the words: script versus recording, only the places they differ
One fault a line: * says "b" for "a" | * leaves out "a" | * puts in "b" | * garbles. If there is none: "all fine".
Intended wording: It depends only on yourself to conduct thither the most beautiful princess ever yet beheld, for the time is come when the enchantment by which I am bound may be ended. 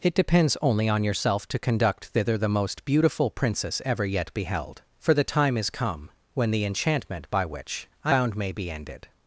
* leaves out "am"